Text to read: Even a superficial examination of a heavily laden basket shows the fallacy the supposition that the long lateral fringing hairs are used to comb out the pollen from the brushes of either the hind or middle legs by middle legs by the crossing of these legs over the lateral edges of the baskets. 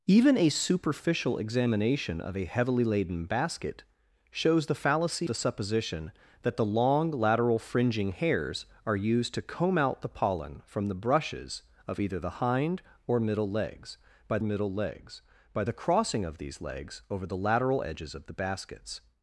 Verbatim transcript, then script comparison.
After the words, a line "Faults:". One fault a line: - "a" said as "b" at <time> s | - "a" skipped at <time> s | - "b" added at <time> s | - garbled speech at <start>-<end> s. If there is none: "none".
Even a superficial examination of a heavily laden basket shows the fallacy the supposition that the long lateral fringing hairs are used to comb out the pollen from the brushes of either the hind or middle legs by middle legs by the crossing of these legs over the lateral edges of the baskets.
Faults:
none